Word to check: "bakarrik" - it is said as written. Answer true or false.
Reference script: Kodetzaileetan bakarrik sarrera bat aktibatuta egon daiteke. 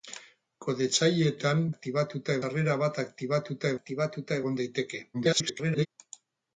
false